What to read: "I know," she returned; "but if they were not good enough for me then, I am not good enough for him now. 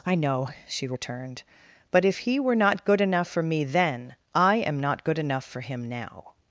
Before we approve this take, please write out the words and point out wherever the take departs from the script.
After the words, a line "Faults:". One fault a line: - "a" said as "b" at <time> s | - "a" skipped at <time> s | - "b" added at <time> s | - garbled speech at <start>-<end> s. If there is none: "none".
"I know," she returned; "but if he were not good enough for me then, I am not good enough for him now.
Faults:
- "they" said as "he" at 2.2 s